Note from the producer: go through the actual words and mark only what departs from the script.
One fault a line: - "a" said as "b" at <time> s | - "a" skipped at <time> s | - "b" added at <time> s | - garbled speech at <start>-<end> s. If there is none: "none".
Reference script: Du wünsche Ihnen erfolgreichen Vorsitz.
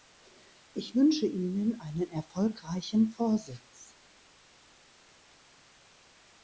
- "Du" said as "Ich" at 0.7 s
- "einen" added at 1.8 s